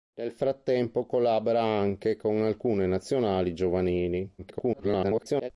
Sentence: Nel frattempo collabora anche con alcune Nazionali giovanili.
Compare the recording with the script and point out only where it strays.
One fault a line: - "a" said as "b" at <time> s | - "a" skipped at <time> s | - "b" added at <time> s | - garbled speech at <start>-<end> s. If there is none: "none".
- garbled speech at 4.4-5.5 s